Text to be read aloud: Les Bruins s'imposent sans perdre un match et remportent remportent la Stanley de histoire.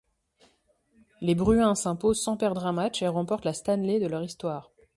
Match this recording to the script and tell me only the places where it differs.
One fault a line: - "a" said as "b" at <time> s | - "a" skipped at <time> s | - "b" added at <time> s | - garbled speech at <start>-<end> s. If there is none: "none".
- "remportent" skipped at 3.5 s
- "leur" added at 4.1 s